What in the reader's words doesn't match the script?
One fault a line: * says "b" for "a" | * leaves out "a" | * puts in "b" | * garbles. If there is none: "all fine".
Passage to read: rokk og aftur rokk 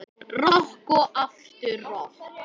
all fine